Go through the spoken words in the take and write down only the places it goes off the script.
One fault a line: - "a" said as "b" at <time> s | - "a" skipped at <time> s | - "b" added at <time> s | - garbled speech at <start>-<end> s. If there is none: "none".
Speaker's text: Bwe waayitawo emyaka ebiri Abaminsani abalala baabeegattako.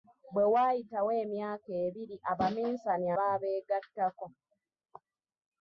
- "abalala" skipped at 3.1 s